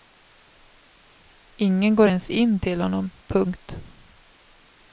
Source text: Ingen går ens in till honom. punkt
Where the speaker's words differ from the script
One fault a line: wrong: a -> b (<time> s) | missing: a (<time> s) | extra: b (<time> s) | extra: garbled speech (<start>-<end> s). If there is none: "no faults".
no faults